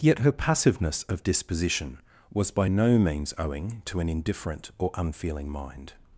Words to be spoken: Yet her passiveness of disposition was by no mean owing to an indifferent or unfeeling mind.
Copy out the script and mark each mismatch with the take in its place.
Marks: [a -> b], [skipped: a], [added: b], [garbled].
Yet her passiveness of disposition was by no [mean -> means] owing to an indifferent or unfeeling mind.